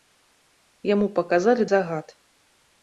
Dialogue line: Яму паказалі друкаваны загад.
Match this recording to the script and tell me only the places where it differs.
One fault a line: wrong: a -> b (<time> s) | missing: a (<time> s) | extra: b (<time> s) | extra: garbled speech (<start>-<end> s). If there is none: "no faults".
missing: друкаваны (1.7 s)